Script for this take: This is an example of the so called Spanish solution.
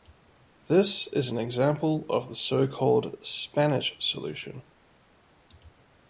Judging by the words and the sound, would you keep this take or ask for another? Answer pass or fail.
pass